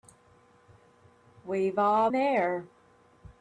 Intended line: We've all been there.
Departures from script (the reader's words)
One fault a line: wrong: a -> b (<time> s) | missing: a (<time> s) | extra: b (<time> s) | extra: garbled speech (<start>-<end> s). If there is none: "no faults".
missing: been (2.1 s)